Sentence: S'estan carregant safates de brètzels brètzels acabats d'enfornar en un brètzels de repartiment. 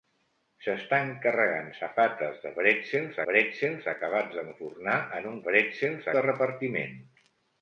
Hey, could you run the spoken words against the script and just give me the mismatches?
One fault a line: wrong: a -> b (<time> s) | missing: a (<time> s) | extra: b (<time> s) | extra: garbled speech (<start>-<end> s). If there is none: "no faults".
no faults